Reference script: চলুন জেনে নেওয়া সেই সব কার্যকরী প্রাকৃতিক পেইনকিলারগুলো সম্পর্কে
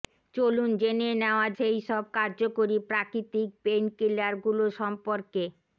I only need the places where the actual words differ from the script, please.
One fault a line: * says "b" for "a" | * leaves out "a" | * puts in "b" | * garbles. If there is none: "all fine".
all fine